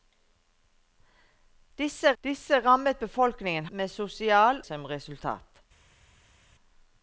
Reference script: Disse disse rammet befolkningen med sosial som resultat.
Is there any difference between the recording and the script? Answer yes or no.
no